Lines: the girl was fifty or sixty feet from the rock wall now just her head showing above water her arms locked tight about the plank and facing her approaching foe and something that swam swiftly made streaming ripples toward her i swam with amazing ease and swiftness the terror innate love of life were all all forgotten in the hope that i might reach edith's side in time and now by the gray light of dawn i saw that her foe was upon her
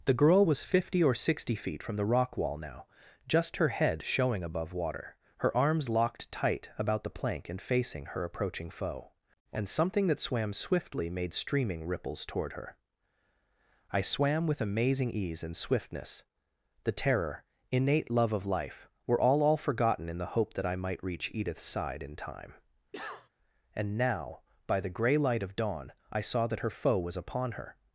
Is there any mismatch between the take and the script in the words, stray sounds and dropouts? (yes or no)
yes